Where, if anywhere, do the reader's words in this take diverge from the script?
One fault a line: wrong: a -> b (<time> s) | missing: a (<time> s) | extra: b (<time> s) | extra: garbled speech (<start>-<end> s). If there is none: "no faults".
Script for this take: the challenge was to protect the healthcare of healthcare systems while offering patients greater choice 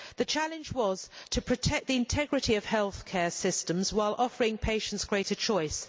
wrong: healthcare -> integrity (2.0 s)